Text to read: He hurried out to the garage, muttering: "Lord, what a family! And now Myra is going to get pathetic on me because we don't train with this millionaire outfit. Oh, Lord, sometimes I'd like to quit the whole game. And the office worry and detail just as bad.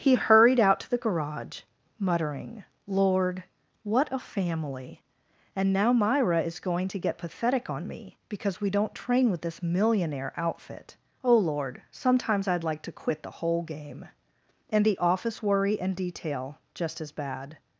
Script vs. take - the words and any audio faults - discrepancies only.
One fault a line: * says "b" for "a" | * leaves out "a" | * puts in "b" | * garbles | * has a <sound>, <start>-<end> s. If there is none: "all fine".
all fine